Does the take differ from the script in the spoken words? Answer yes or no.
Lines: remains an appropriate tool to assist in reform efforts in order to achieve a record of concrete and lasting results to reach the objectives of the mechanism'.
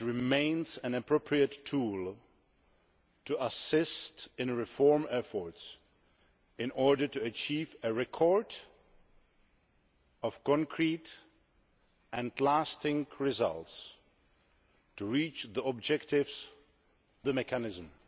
yes